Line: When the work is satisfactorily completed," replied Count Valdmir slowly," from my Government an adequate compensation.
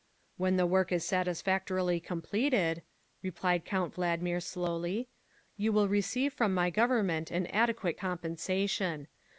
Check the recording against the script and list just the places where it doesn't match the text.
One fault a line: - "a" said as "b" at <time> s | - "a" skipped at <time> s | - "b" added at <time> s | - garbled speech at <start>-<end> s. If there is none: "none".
- "you will receive" added at 5.6 s